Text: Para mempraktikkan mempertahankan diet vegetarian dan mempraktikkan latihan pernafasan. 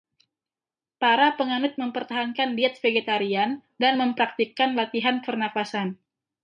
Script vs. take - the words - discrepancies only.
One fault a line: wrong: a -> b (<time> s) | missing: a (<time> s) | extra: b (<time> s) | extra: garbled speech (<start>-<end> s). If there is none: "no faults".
wrong: mempraktikkan -> penganut (1.4 s)